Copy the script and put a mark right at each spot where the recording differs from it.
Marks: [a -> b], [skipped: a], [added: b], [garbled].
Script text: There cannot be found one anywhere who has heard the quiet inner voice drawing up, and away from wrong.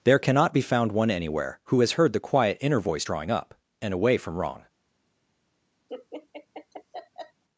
There cannot be found one anywhere who has heard the quiet inner voice drawing up, and away from wrong.